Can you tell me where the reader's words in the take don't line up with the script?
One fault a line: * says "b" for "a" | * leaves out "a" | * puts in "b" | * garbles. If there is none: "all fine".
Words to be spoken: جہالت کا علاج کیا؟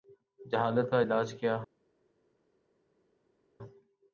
all fine